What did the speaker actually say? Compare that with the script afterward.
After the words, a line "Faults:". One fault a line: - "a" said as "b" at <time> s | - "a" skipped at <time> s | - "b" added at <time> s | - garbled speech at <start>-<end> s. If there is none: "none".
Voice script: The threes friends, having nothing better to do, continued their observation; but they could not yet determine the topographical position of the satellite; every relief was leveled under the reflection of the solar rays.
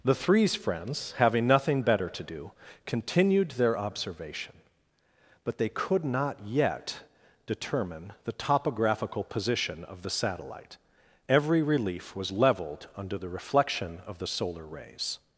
The threes friends, having nothing better to do, continued their observation; but they could not yet determine the topographical position of the satellite; every relief was leveled under the reflection of the solar rays.
Faults:
none